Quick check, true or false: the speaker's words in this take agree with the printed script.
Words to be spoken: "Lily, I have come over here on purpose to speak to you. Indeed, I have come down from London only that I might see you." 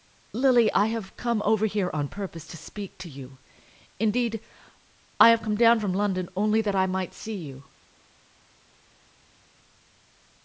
true